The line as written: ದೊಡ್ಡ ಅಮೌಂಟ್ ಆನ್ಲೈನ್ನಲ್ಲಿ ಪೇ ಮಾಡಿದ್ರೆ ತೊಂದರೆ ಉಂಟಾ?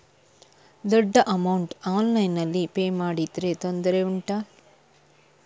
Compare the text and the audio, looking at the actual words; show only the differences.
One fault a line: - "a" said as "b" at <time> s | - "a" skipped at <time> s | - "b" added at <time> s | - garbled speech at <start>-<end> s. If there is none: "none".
none